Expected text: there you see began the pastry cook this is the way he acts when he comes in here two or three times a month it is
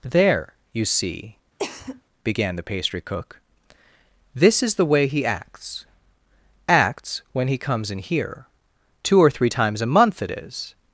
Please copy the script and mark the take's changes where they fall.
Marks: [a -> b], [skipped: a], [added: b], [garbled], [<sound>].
there you see [cough] began the pastry cook this is the way he acts [added: acts] when he comes in here two or three times a month it is